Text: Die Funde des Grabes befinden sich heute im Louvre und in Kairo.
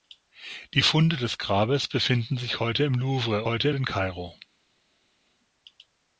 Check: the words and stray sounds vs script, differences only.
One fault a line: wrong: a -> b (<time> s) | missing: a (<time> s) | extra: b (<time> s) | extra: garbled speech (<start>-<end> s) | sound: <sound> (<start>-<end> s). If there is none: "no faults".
wrong: und -> heute (3.4 s)